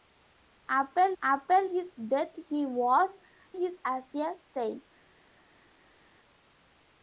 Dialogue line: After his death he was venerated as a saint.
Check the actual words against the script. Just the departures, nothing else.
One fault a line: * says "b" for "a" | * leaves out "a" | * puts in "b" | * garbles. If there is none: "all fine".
* puts in "after"
* says "his" for "venerated"